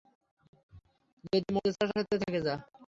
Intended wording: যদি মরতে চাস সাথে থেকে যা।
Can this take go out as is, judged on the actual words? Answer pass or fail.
pass